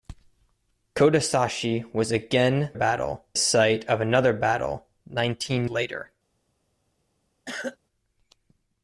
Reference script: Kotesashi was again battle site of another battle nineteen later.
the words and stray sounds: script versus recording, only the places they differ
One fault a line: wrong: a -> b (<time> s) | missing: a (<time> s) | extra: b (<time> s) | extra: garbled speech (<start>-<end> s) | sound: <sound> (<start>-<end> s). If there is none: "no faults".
sound: cough (7.5-7.8 s)